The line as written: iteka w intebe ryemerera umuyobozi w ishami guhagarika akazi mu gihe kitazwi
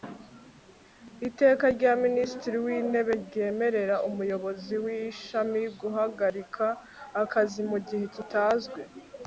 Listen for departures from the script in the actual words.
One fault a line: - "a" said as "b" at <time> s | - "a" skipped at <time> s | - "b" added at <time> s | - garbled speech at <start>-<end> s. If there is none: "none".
- "rya minisitiri" added at 1.8 s